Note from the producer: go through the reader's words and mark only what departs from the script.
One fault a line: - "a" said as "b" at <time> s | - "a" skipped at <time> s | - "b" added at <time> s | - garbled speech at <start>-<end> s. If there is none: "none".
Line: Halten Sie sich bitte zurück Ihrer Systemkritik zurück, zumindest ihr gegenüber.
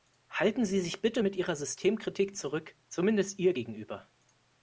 - "zurück" said as "mit" at 1.2 s